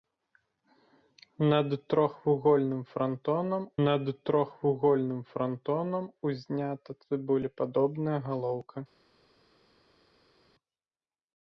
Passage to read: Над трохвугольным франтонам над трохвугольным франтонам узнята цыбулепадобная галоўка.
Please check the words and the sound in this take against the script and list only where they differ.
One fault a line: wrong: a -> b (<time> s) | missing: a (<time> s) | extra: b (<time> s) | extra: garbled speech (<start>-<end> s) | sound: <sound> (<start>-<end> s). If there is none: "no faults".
no faults